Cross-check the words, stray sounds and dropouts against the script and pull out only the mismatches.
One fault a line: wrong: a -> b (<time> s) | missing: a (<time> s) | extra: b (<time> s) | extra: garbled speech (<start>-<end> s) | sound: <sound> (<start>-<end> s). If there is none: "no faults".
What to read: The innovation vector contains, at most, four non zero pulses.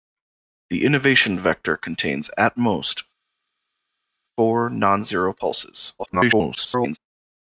extra: garbled speech (6.0-7.0 s)